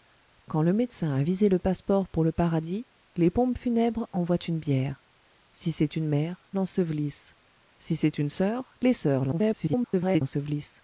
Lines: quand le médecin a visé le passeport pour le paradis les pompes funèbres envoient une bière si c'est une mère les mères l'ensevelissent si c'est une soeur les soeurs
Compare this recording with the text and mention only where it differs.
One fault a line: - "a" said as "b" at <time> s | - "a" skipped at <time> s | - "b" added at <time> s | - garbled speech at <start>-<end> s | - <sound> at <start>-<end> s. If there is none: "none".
- "les mères" skipped at 6.5 s
- garbled speech at 9.3-10.2 s